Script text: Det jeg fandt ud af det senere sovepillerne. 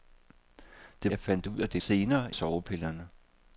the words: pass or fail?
pass